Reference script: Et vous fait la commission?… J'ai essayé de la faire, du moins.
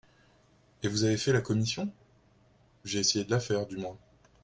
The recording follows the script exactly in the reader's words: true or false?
false